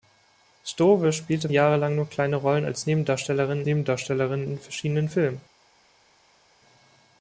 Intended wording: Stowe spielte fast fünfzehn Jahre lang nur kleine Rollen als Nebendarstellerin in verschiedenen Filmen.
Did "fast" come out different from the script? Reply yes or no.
yes